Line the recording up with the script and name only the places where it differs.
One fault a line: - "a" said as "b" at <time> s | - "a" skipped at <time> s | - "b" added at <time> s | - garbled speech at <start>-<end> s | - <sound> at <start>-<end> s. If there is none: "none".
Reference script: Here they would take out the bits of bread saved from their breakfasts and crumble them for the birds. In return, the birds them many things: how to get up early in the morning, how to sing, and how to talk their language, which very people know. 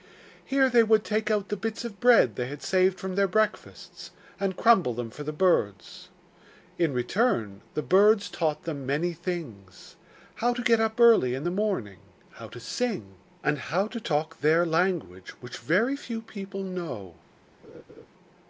- "they had" added at 2.4 s
- "taught" added at 8.3 s
- "few" added at 15.9 s
- laugh at 17.6-18.1 s